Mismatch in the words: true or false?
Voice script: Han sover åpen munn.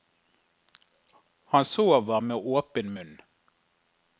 true